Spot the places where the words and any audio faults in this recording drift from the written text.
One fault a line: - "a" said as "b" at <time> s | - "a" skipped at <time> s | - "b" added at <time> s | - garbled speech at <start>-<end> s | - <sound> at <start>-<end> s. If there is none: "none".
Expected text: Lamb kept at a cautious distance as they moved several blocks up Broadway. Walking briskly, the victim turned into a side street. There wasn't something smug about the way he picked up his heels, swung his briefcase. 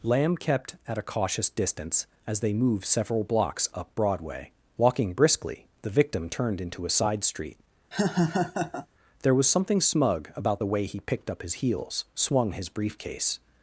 - laugh at 7.9-8.9 s
- "wasn't" said as "was" at 9.3 s